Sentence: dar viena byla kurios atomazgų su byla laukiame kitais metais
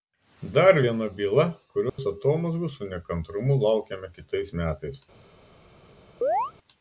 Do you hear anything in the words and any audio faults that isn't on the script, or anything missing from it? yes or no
yes